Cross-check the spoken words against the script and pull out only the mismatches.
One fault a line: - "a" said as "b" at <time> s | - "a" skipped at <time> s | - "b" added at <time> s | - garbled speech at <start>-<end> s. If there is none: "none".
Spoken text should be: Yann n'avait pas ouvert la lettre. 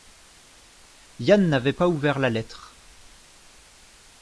none